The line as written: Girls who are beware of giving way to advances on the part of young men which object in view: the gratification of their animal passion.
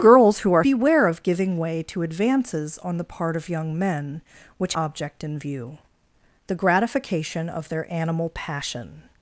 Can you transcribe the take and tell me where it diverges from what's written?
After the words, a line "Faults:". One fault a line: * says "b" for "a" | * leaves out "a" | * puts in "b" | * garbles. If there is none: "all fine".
Girls who are beware of giving way to advances on the part of young men which object in view: the gratification of their animal passion.
Faults:
all fine